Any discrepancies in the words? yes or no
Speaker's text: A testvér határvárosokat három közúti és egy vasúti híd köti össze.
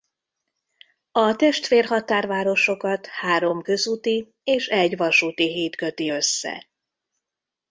no